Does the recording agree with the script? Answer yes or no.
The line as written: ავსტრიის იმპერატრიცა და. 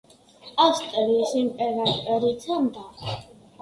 yes